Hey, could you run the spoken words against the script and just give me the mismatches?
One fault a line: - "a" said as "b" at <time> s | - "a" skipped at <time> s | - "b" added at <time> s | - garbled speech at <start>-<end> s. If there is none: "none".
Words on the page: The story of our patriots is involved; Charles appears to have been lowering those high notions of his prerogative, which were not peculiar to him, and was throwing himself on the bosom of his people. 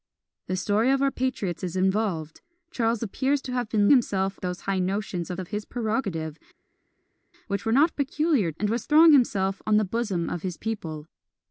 - "lowering" said as "himself" at 3.9 s
- "of" added at 5.4 s
- "to him" skipped at 8.5 s